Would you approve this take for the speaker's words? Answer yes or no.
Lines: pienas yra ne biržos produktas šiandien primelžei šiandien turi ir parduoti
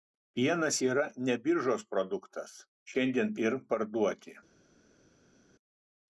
no